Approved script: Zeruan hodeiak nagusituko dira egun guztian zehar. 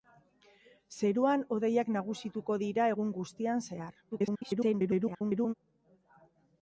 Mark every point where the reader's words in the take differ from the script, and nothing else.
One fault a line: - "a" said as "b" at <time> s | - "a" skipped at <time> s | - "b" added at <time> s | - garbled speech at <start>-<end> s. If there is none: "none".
- garbled speech at 4.1-5.5 s